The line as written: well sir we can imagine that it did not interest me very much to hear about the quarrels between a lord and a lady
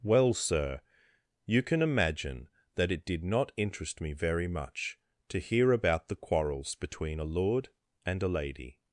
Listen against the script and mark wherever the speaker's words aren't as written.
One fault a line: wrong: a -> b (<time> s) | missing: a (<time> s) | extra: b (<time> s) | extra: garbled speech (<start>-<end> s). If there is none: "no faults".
wrong: we -> you (1.4 s)